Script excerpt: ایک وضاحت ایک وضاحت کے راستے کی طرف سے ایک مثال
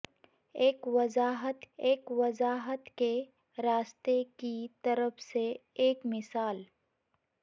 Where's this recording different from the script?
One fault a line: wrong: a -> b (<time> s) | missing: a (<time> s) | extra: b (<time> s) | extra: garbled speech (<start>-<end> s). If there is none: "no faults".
no faults